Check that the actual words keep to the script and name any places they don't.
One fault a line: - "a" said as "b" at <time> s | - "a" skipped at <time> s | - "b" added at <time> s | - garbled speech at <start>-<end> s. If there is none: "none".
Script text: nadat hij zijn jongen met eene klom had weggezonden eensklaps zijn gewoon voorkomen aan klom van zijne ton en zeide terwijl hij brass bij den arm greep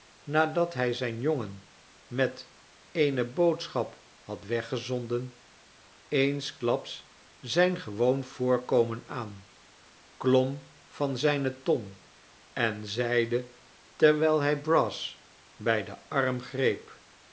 - "klom" said as "boodschap" at 3.3 s